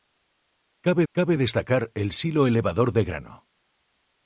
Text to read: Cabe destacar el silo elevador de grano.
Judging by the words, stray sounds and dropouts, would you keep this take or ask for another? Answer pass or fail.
fail